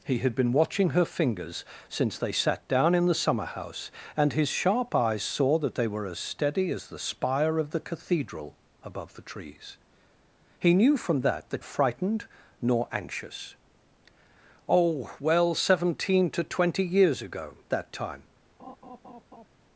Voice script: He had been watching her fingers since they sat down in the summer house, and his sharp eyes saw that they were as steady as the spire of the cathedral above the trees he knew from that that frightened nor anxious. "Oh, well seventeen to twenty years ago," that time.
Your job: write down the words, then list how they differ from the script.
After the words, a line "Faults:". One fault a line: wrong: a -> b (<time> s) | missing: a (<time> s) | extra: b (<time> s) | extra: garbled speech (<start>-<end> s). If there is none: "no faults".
He had been watching her fingers since they sat down in the summer house, and his sharp eyes saw that they were as steady as the spire of the cathedral above the trees he knew from that that frightened nor anxious. "Oh, well seventeen to twenty years ago," that time.
Faults:
no faults